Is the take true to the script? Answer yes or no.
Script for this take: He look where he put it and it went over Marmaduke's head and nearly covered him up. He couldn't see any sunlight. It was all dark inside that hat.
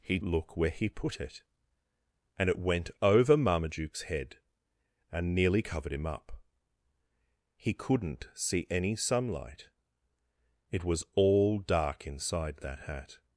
yes